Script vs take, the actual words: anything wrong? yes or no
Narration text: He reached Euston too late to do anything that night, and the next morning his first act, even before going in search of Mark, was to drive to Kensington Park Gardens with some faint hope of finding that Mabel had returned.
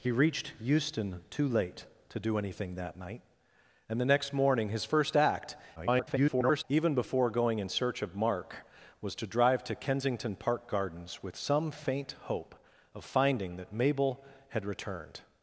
yes